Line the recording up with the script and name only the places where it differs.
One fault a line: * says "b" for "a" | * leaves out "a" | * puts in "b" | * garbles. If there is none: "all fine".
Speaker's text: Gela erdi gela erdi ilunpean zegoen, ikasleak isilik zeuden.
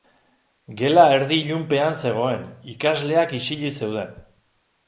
* leaves out "gela erdi"